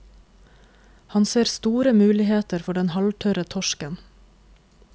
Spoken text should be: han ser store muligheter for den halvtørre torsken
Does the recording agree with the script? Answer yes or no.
yes